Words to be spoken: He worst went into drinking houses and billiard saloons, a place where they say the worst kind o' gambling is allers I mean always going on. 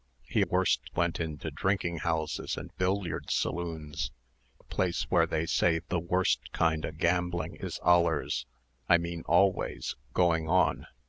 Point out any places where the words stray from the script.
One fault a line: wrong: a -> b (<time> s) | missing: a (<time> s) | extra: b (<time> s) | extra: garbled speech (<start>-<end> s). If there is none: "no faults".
no faults